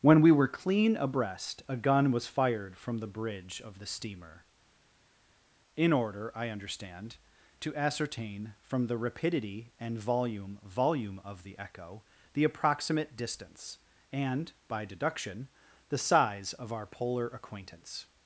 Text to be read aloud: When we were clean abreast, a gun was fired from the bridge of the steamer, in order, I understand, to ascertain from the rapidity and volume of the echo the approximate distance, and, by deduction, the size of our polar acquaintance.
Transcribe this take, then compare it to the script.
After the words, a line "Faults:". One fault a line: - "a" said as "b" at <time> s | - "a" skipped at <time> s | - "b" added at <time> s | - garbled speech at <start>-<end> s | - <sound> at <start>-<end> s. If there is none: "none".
When we were clean abreast, a gun was fired from the bridge of the steamer, in order, I understand, to ascertain from the rapidity and volume volume of the echo the approximate distance, and, by deduction, the size of our polar acquaintance.
Faults:
- "volume" added at 10.6 s